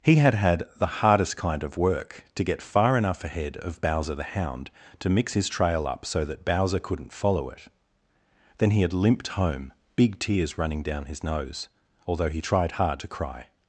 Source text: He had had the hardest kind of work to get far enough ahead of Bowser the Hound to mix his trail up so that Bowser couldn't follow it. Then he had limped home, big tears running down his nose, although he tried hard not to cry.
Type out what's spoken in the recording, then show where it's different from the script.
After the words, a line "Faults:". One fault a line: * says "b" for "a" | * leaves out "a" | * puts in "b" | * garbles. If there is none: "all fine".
He had had the hardest kind of work to get far enough ahead of Bowser the Hound to mix his trail up so that Bowser couldn't follow it. Then he had limped home, big tears running down his nose, although he tried hard to cry.
Faults:
* leaves out "not"